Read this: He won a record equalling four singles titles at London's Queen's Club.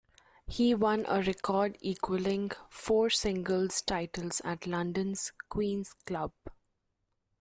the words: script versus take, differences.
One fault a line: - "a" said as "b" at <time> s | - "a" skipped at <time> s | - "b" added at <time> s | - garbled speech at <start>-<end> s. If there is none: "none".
none